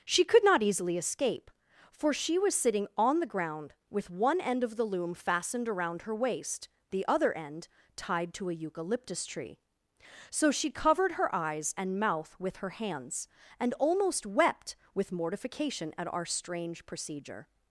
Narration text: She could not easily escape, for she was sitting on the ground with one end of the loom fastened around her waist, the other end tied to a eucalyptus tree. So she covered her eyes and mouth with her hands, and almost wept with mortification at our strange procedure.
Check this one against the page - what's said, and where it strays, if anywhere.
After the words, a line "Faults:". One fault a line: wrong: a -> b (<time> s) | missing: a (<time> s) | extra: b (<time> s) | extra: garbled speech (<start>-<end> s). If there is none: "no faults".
She could not easily escape, for she was sitting on the ground with one end of the loom fastened around her waist, the other end tied to a eucalyptus tree. So she covered her eyes and mouth with her hands, and almost wept with mortification at our strange procedure.
Faults:
no faults